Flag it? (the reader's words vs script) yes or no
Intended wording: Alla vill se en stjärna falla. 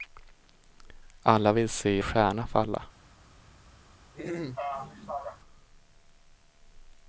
yes